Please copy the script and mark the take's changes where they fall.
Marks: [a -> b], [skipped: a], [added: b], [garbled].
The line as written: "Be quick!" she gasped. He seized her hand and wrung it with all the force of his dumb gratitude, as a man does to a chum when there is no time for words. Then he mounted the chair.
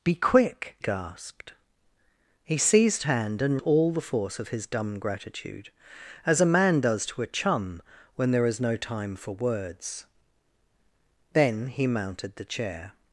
"Be quick!" [skipped: she] gasped. He seized [skipped: her] hand and [skipped: wrung it with] all the force of his dumb gratitude, as a man does to a chum when there is no time for words. Then he mounted the chair.